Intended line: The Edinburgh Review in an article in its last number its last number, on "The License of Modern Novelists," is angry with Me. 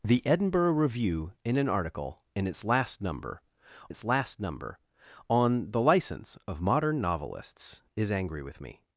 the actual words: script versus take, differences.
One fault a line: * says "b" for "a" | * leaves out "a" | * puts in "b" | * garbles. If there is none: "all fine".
all fine